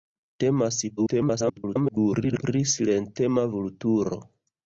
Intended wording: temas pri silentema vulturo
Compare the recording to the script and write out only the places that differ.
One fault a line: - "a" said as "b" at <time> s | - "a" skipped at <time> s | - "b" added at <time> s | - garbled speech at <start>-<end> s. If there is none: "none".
- garbled speech at 1.0-2.4 s